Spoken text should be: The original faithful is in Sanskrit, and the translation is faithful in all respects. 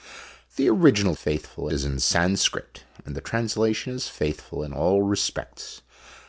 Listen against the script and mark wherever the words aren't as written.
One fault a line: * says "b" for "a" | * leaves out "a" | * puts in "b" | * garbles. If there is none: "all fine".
all fine